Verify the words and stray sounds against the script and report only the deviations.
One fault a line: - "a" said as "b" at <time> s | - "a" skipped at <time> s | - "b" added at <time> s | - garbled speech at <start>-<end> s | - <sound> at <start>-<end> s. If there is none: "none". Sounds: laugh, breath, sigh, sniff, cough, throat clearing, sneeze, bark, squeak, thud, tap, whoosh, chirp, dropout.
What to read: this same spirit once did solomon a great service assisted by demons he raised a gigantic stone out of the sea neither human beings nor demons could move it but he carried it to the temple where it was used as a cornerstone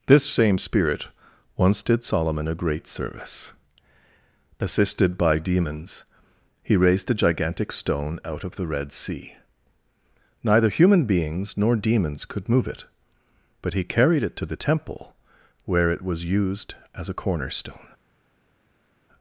- "red" added at 8.7 s